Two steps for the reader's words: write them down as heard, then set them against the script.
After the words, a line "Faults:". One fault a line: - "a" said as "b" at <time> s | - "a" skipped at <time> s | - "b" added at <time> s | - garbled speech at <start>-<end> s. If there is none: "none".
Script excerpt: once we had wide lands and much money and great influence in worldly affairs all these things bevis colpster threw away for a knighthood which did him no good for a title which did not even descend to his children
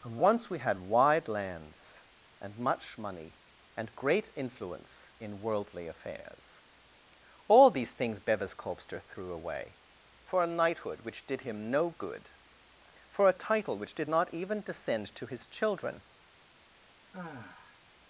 once we had wide lands and much money and great influence in worldly affairs all these things bevis colpster threw away for a knighthood which did him no good for a title which did not even descend to his children
Faults:
none